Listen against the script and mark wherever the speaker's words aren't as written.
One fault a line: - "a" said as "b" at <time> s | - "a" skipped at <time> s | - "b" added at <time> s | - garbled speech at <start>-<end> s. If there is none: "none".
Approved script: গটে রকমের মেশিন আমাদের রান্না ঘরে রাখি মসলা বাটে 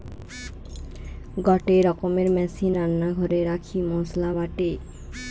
- "আমাদের" skipped at 2.7 s